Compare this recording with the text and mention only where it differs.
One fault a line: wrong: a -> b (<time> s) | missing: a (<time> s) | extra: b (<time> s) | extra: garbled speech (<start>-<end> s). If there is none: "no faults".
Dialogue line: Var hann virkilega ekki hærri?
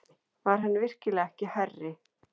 no faults